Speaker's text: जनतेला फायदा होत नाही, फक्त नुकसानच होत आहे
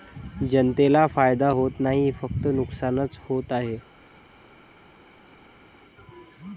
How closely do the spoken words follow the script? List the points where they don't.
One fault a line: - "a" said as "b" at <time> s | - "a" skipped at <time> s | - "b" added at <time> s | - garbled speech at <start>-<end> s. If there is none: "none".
none